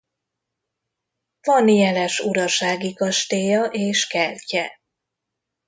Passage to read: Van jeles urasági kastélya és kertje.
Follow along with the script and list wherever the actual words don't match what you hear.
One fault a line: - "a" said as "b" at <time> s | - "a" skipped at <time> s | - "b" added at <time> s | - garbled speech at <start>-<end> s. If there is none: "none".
none